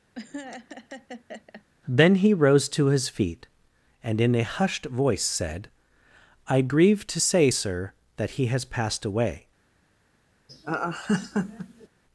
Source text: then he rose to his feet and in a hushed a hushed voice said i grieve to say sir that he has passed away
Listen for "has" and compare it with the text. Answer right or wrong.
right